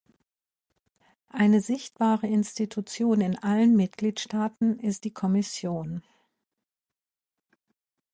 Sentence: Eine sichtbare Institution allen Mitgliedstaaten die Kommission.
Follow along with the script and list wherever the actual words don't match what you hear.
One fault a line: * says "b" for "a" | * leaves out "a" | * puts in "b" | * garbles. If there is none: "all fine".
* puts in "in"
* puts in "ist"